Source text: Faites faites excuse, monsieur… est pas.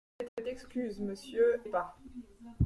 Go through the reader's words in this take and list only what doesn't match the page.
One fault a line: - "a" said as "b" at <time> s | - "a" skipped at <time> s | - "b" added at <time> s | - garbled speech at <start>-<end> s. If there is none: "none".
none